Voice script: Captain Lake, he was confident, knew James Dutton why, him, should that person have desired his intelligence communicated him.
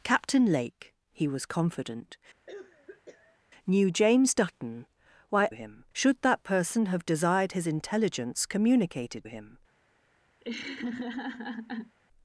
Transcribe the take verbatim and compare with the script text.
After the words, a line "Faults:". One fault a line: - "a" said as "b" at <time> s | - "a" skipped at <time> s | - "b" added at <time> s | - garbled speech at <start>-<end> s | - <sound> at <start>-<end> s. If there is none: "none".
Captain Lake, he was confident, knew James Dutton why, him, should that person have desired his intelligence communicated him.
Faults:
- cough at 2.5-3.4 s
- laugh at 10.4-12.0 s